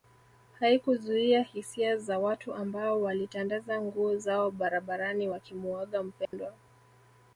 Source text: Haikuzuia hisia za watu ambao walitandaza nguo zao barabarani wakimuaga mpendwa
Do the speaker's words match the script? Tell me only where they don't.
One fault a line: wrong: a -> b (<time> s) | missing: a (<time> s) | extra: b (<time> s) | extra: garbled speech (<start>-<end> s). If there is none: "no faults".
no faults